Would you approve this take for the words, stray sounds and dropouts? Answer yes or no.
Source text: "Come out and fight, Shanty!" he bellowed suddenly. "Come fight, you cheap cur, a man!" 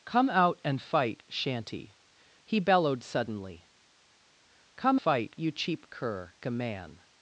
yes